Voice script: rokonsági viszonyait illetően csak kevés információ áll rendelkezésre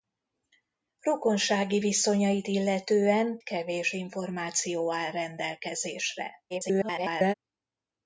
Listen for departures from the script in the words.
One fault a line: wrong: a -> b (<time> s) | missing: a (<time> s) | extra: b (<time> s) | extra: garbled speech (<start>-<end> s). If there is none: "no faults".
missing: csak (3.4 s)
extra: garbled speech (6.5-7.3 s)